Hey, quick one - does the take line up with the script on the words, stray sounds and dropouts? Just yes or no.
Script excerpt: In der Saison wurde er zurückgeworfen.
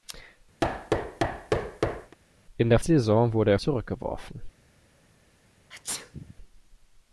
no